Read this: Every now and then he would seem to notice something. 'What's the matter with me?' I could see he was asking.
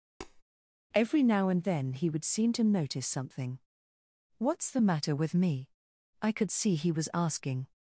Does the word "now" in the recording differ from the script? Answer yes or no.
no